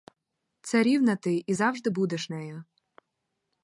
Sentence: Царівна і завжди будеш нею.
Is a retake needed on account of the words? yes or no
yes